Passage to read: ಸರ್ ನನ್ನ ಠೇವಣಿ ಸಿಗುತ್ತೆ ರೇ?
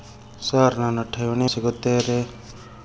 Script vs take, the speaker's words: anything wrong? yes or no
no